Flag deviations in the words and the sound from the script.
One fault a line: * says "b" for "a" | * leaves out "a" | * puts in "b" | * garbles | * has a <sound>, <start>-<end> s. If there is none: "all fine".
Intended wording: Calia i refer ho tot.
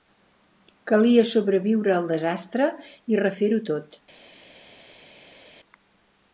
* puts in "sobreviure al desastre"